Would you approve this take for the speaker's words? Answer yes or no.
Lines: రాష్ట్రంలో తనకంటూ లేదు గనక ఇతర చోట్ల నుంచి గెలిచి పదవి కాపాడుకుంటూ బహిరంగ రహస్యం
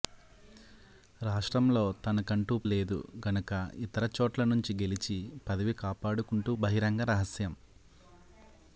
yes